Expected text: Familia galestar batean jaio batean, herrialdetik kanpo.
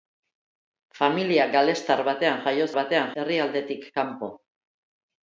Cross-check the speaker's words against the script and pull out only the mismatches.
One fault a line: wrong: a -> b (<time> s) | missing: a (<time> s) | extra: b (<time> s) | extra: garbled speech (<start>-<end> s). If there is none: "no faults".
no faults